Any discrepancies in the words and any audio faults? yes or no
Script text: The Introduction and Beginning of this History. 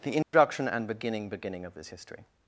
yes